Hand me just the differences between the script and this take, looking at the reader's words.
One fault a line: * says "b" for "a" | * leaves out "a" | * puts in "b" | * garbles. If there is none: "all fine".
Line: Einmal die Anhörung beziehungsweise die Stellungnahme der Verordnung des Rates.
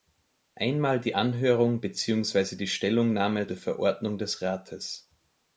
all fine